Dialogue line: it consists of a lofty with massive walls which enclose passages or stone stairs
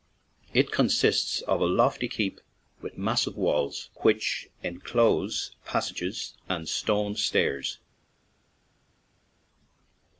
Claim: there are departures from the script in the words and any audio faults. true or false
true